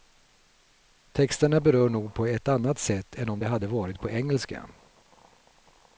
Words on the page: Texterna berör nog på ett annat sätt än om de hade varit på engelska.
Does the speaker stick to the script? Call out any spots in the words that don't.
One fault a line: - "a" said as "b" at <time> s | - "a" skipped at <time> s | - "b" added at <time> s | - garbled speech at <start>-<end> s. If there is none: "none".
none